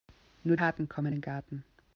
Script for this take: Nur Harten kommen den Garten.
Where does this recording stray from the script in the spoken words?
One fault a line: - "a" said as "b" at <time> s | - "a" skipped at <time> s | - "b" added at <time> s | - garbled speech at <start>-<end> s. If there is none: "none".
none